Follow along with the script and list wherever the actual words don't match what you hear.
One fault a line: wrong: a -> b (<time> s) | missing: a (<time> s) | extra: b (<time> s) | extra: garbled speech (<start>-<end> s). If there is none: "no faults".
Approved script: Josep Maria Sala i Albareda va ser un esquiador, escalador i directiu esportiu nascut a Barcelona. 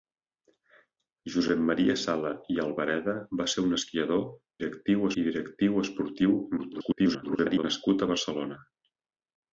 wrong: escalador -> directiu (4.6 s)
extra: garbled speech (6.6-7.6 s)